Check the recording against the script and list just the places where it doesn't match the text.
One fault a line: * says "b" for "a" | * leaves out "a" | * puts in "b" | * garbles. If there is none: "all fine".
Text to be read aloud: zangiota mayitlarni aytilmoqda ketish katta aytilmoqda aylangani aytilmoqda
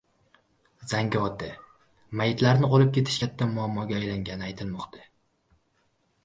* says "olib" for "aytilmoqda"
* says "muammoga" for "aytilmoqda"